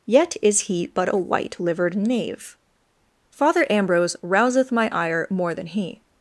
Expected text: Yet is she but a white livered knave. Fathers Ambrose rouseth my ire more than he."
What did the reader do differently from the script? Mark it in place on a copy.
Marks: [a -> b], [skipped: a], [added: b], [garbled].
Yet is [she -> he] but a white livered knave. [Fathers -> Father] Ambrose rouseth my ire more than he."